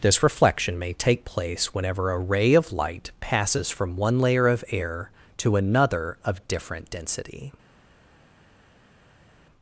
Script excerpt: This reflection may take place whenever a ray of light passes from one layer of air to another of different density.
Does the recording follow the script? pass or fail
pass